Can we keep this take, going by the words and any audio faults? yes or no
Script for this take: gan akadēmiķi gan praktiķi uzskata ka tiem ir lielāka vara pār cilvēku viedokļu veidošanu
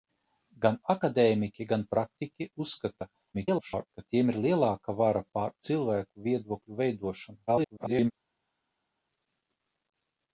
no